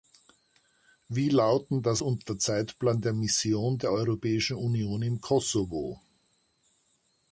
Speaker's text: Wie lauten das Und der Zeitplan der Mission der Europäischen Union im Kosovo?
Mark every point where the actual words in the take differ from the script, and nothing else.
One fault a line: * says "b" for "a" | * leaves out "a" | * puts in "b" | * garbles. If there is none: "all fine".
all fine